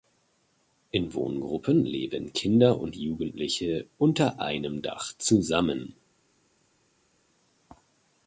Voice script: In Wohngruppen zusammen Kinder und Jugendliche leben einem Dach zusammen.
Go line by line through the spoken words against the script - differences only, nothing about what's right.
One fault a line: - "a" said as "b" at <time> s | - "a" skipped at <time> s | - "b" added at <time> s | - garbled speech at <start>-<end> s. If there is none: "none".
- "zusammen" said as "leben" at 1.9 s
- "leben" said as "unter" at 4.0 s